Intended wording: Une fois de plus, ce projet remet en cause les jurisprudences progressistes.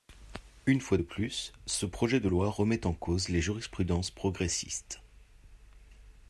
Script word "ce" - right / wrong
right